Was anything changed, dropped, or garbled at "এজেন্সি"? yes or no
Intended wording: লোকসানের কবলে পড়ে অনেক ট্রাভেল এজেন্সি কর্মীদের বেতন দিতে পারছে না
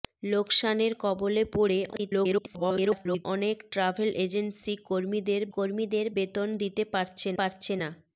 no